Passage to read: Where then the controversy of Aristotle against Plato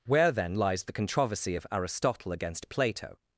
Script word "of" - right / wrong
right